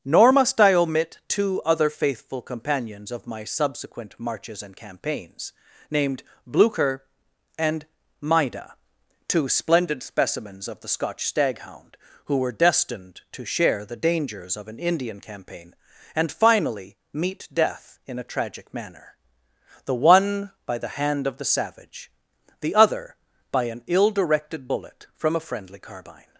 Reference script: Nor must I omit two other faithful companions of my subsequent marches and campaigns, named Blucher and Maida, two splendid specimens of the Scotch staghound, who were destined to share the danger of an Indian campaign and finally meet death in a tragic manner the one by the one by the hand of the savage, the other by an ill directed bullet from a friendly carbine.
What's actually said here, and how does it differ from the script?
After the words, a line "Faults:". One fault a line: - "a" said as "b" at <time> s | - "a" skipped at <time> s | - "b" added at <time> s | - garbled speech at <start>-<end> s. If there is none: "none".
Nor must I omit two other faithful companions of my subsequent marches and campaigns, named Blucher and Maida, two splendid specimens of the Scotch staghound, who were destined to share the dangers of an Indian campaign and finally meet death in a tragic manner the one by the hand of the savage, the other by an ill directed bullet from a friendly carbine.
Faults:
- "danger" said as "dangers" at 14.0 s
- "one by the" skipped at 20.9 s